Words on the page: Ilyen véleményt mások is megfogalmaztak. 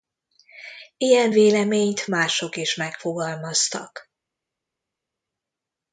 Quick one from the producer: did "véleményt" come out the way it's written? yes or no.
yes